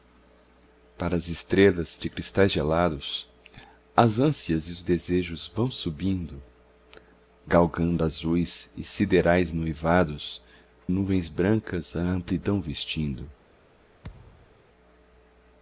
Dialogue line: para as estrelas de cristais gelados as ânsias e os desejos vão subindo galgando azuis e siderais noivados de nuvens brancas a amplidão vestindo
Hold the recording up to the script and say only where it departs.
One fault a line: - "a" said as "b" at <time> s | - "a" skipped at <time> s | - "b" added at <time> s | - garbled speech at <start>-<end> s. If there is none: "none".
- "de" skipped at 10.4 s